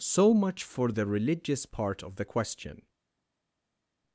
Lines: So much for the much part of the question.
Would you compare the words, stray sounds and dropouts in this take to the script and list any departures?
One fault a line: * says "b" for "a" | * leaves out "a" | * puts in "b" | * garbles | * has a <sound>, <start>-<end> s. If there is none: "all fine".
* says "religious" for "much"